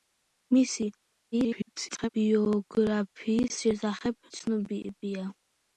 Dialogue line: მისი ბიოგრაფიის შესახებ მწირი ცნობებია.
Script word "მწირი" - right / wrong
wrong